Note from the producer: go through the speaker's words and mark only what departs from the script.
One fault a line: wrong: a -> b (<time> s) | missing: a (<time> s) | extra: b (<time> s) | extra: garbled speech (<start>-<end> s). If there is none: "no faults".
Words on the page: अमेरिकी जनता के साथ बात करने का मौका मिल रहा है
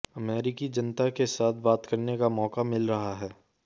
no faults